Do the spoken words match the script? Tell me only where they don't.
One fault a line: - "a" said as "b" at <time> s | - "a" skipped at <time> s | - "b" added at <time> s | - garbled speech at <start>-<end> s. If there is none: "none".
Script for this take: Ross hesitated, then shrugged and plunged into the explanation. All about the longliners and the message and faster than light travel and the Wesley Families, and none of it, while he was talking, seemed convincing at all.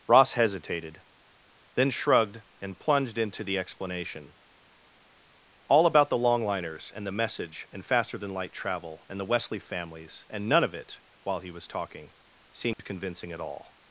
none